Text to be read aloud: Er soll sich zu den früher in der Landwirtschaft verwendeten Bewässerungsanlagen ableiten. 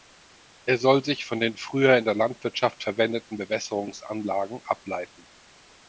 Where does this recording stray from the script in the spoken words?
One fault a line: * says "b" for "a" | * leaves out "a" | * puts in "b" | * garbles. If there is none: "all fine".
* says "von" for "zu"